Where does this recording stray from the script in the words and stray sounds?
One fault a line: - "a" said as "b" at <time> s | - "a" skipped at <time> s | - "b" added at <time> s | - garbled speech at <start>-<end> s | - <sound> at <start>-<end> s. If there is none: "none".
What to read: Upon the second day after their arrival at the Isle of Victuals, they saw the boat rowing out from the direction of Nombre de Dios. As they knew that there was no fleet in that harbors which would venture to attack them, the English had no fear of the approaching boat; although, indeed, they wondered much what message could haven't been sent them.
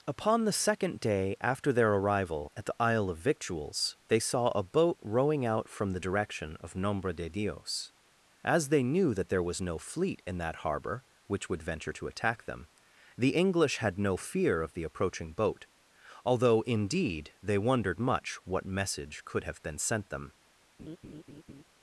- "the" said as "a" at 4.5 s
- "harbors" said as "harbor" at 10.6 s
- "haven't" said as "have" at 19.4 s
- laugh at 20.8-21.6 s